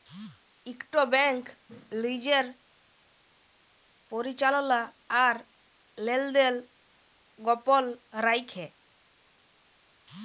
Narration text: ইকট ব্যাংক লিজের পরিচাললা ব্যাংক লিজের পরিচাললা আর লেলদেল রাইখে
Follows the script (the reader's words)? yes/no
no